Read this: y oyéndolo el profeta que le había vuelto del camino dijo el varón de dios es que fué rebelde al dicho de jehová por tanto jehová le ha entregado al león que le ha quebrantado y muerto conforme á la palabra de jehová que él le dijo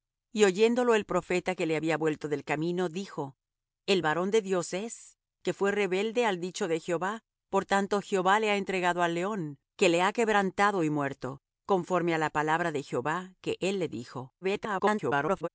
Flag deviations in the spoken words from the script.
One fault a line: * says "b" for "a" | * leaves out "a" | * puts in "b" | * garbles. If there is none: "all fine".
* garbles